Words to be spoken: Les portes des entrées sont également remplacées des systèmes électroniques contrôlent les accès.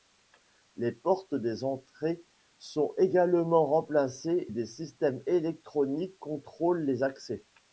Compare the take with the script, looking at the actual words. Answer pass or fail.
pass